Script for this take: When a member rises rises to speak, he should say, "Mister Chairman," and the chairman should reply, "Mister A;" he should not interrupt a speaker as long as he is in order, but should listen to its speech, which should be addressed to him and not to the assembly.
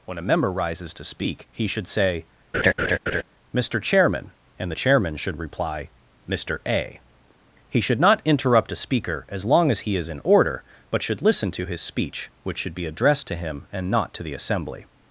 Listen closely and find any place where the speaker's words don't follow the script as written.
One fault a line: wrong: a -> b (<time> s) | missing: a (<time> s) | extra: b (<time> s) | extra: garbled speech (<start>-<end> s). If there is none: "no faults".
missing: rises (0.9 s)
wrong: its -> his (11.6 s)